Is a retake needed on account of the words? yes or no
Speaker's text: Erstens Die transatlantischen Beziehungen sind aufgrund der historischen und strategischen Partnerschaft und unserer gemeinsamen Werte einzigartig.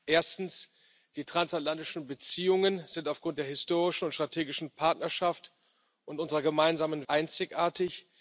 yes